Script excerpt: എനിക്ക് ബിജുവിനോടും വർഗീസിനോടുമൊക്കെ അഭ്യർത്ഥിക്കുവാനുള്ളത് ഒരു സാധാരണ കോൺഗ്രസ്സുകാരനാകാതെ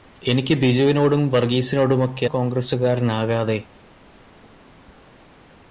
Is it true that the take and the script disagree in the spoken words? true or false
true